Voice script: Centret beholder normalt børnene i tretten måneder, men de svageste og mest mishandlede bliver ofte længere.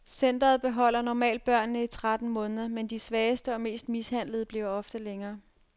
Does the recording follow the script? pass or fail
pass